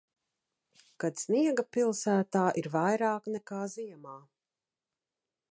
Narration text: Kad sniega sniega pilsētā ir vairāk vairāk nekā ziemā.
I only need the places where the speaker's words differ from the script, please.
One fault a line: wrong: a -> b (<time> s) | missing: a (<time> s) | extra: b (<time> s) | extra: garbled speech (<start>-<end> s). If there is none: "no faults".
missing: sniega (1.6 s)
missing: vairāk (3.3 s)